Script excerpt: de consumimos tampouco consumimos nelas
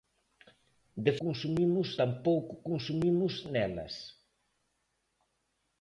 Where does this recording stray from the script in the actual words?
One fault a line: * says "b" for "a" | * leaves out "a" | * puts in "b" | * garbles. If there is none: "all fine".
all fine